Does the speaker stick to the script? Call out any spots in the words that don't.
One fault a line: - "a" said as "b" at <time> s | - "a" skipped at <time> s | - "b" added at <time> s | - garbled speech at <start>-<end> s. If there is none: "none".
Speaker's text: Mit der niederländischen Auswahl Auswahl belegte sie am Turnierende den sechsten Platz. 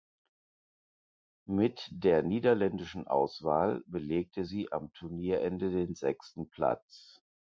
- "Auswahl" skipped at 3.8 s